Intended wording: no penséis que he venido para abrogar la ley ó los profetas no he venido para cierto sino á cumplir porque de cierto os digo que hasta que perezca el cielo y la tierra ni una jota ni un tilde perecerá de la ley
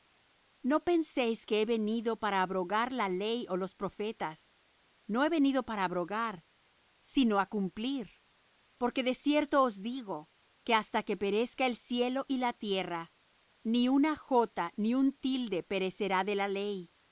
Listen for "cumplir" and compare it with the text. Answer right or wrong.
right